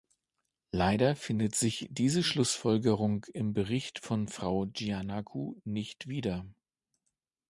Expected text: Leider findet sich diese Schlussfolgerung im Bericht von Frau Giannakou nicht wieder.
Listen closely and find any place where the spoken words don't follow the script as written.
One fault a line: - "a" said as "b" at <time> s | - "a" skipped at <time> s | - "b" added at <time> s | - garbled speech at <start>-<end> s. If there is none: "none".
none